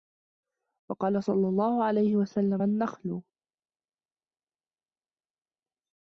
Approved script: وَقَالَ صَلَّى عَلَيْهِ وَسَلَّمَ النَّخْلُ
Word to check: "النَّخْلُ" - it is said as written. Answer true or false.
true